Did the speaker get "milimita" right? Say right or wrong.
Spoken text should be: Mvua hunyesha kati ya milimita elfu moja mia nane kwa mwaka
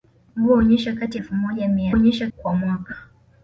wrong